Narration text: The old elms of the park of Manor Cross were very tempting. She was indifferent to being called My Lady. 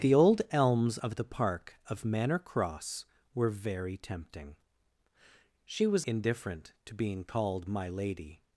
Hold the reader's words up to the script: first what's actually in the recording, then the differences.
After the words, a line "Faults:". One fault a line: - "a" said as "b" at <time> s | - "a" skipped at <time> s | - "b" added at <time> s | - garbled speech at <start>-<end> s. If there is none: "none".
The old elms of the park of Manor Cross were very tempting. She was indifferent to being called My Lady.
Faults:
none